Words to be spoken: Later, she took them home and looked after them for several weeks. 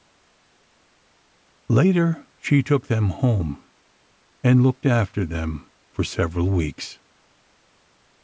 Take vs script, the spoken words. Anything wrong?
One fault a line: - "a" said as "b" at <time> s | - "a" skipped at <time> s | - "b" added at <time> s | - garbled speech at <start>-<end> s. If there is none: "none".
none